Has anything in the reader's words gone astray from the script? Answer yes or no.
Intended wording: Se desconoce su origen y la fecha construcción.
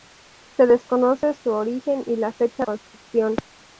no